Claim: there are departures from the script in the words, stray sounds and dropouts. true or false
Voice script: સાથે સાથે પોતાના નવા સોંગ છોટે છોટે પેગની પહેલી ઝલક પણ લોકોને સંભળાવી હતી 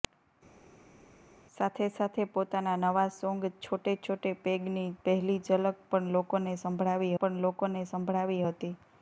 true